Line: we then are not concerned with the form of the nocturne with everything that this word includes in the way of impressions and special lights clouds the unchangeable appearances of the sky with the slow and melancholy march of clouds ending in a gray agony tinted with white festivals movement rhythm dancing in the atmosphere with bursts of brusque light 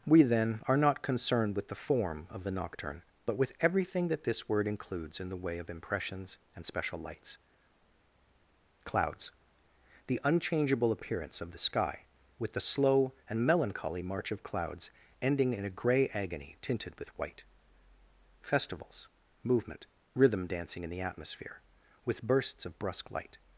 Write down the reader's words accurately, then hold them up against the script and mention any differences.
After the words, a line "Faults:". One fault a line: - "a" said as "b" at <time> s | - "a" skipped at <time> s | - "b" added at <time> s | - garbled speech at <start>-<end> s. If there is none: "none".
we then are not concerned with the form of the nocturne but with everything that this word includes in the way of impressions and special lights clouds the unchangeable appearance of the sky with the slow and melancholy march of clouds ending in a gray agony tinted with white festivals movement rhythm dancing in the atmosphere with bursts of brusque light
Faults:
- "but" added at 3.3 s
- "appearances" said as "appearance" at 10.9 s